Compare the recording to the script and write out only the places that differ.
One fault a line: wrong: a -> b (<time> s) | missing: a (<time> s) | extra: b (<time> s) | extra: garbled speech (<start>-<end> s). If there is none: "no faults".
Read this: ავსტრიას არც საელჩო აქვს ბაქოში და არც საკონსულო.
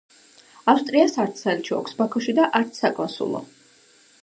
no faults